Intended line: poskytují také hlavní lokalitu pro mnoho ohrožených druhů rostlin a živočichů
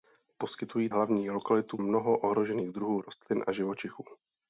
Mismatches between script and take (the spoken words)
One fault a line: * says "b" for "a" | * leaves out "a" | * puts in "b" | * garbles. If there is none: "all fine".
* leaves out "také"
* leaves out "pro"